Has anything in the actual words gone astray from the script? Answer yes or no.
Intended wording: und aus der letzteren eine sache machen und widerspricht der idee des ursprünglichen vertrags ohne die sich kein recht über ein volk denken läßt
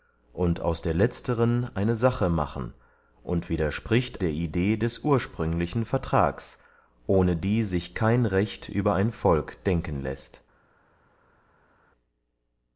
no